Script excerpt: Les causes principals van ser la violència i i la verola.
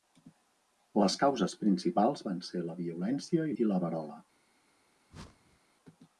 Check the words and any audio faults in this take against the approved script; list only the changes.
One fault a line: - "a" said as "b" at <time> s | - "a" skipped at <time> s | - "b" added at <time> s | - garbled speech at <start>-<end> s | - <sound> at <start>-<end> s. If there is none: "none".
- whoosh at 5.1-5.6 s